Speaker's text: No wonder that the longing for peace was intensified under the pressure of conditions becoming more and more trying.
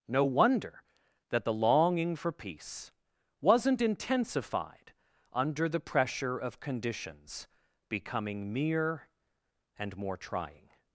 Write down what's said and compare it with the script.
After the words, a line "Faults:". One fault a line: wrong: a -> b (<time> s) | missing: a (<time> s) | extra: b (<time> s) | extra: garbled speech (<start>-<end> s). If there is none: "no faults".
No wonder that the longing for peace wasn't intensified under the pressure of conditions becoming mere and more trying.
Faults:
wrong: was -> wasn't (3.4 s)
wrong: more -> mere (8.5 s)